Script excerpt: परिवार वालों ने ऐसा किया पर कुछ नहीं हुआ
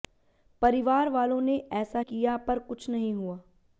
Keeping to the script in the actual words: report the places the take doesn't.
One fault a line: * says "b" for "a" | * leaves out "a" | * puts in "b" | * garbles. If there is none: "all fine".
all fine